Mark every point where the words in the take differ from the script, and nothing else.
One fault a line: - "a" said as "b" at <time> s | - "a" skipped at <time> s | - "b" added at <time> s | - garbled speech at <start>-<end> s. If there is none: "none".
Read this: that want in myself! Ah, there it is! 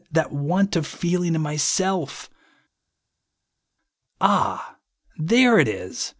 - "of feeling" added at 0.8 s